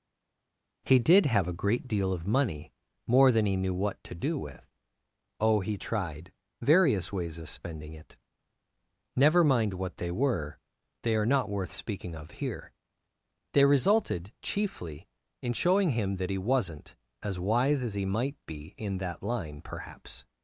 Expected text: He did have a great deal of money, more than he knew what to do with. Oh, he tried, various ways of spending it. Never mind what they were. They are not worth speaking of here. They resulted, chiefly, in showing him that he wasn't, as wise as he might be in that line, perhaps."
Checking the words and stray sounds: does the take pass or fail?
pass